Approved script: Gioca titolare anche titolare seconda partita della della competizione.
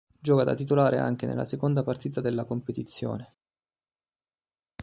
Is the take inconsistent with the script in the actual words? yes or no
yes